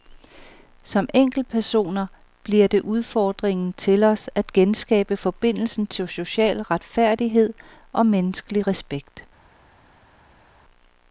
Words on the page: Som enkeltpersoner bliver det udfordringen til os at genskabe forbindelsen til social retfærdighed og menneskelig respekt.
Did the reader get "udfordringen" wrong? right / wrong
right